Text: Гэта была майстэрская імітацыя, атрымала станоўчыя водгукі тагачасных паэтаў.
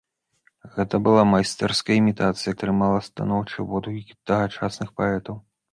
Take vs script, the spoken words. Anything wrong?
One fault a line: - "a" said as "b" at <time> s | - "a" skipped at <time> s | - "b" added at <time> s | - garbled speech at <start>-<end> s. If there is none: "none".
none